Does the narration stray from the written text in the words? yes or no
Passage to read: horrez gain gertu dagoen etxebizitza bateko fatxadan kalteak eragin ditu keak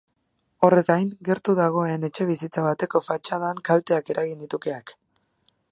no